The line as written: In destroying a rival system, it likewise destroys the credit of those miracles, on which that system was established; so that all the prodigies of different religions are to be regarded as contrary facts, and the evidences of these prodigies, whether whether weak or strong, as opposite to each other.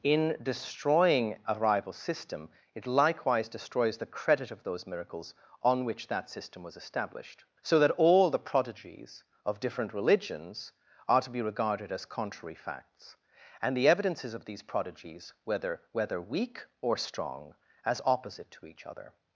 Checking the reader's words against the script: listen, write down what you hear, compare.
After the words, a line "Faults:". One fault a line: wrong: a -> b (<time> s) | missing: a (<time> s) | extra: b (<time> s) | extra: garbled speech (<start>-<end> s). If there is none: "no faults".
In destroying a rival system, it likewise destroys the credit of those miracles, on which that system was established; so that all the prodigies of different religions are to be regarded as contrary facts, and the evidences of these prodigies, whether whether weak or strong, as opposite to each other.
Faults:
no faults